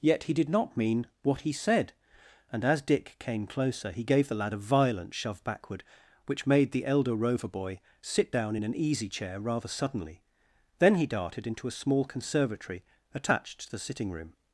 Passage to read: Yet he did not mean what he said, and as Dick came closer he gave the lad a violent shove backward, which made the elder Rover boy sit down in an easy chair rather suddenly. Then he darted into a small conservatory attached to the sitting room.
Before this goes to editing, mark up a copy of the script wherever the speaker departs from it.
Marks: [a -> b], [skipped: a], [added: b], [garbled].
Yet he did not mean what he said, and as Dick came closer he gave the lad a violent shove backward, which made the elder Rover boy sit down in an easy chair rather suddenly. Then he darted into a small conservatory attached to the sitting room.